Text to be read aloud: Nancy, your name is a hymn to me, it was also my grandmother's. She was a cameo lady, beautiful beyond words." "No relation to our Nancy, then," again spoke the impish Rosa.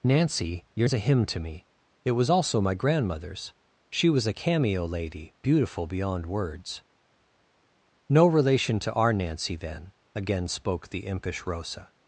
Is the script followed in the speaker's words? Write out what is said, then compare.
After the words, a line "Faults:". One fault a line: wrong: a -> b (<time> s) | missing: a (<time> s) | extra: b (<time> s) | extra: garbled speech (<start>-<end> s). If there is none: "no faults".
Nancy, your is a hymn to me, it was also my grandmother's. She was a cameo lady, beautiful beyond words." "No relation to our Nancy, then," again spoke the impish Rosa.
Faults:
missing: name (0.9 s)